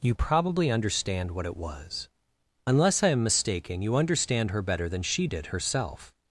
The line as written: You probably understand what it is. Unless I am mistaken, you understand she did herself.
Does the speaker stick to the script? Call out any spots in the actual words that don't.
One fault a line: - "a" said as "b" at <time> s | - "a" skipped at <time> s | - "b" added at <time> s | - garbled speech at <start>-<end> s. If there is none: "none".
- "is" said as "was" at 1.6 s
- "her better than" added at 4.5 s